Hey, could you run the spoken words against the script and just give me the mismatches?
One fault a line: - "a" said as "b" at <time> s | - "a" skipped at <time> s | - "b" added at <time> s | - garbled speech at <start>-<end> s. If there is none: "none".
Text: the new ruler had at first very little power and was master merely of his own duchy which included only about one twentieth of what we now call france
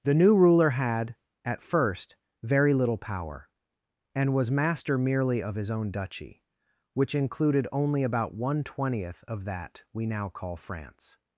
- "what" said as "that" at 9.4 s